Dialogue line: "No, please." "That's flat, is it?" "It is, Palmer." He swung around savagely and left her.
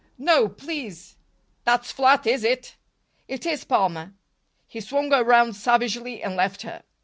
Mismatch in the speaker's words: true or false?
false